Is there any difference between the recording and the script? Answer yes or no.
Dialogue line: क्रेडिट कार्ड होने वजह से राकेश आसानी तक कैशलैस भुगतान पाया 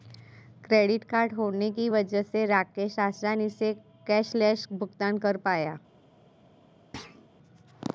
yes